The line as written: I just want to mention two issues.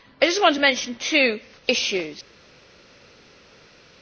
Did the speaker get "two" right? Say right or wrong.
right